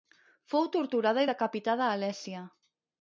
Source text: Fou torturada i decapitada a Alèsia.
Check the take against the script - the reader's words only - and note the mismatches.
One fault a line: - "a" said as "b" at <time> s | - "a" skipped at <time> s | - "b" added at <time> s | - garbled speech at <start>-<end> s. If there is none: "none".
none